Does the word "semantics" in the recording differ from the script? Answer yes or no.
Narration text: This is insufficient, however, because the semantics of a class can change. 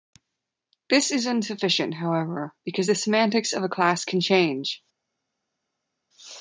no